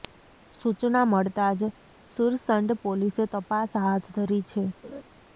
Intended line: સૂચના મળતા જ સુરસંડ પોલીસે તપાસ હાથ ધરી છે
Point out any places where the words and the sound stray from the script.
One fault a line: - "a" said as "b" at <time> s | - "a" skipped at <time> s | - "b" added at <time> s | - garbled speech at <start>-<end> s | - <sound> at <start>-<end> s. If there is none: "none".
- laugh at 4.8-5.0 s